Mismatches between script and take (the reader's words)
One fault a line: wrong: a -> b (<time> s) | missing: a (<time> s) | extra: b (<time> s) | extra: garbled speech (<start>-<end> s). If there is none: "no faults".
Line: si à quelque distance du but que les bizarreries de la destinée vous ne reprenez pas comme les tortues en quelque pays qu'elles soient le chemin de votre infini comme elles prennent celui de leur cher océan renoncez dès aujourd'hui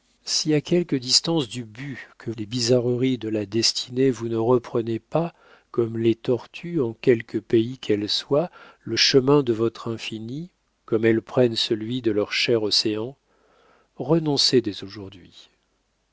no faults